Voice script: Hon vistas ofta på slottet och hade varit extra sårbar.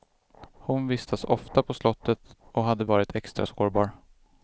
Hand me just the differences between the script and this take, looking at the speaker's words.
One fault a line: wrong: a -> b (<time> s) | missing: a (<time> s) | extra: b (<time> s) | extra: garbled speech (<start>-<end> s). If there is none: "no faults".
no faults